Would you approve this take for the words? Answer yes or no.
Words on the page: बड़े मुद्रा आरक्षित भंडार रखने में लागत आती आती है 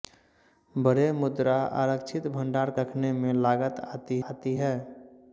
yes